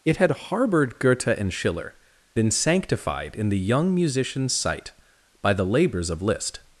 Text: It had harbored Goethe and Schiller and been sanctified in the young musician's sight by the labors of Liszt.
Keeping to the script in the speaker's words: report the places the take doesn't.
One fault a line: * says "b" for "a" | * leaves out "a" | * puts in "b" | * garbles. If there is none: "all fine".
* leaves out "and"